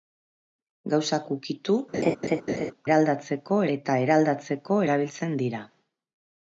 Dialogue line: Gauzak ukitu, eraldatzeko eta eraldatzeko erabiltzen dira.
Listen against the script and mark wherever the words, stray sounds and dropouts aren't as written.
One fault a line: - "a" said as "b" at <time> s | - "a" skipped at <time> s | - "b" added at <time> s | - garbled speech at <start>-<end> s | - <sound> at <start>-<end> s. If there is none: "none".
- laugh at 1.9-2.7 s